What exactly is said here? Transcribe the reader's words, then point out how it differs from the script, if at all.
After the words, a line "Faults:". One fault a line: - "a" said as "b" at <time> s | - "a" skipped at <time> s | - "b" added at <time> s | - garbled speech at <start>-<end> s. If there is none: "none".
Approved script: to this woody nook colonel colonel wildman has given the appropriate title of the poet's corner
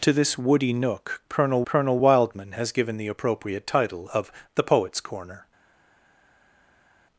to this woody nook colonel colonel wildman has given the appropriate title of the poet's corner
Faults:
none